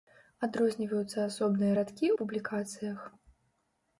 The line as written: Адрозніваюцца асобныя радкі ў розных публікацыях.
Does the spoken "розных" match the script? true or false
false